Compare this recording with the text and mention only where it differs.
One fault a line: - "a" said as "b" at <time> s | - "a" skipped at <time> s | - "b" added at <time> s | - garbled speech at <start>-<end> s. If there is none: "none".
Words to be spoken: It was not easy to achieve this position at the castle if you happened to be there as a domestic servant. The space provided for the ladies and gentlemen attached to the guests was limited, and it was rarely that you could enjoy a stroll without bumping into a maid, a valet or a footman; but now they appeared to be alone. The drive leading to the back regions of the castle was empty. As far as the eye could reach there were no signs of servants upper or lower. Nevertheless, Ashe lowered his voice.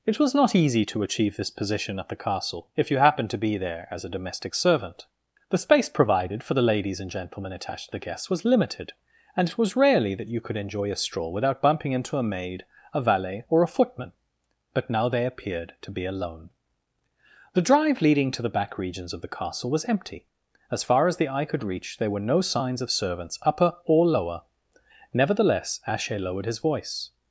none